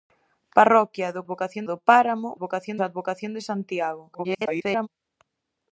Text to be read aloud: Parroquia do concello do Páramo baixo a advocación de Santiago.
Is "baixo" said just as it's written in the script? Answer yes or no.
no